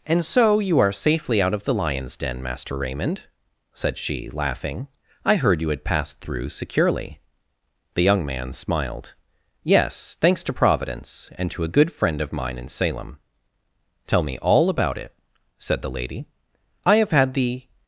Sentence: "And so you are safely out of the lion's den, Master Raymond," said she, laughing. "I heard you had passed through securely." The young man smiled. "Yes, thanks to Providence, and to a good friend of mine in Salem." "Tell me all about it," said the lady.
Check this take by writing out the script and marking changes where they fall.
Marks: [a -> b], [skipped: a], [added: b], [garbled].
"And so you are safely out of the lion's den, Master Raymond," said she, laughing. "I heard you had passed through securely." The young man smiled. "Yes, thanks to Providence, and to a good friend of mine in Salem." "Tell me all about it," said the lady. [added: I have had the]